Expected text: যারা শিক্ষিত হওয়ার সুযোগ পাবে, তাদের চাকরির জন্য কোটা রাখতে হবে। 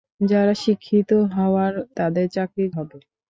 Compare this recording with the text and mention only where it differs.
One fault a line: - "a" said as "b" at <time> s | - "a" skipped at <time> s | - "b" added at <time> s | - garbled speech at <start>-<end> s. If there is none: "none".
- "সুযোগ পাবে" skipped at 1.7 s
- "জন্য কোটা রাখতে" skipped at 2.7 s